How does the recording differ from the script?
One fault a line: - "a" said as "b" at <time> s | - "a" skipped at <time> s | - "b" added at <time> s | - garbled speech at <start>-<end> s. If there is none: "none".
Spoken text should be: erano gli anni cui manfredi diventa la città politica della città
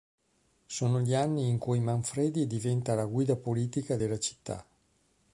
- "erano" said as "sono" at 0.7 s
- "in" added at 1.5 s
- "città" said as "guida" at 3.0 s